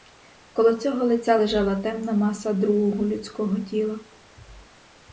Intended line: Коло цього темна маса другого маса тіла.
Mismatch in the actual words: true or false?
true